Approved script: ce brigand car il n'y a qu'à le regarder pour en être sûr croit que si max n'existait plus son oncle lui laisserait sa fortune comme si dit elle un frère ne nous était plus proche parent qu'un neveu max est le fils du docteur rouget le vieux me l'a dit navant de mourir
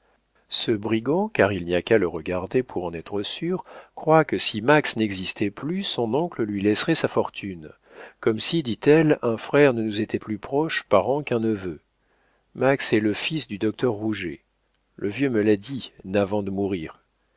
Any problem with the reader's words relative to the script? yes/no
no